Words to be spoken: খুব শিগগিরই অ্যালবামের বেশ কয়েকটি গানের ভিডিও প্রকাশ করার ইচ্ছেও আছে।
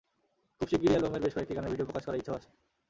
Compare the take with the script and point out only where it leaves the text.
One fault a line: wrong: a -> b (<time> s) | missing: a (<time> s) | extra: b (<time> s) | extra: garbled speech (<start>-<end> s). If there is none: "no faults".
no faults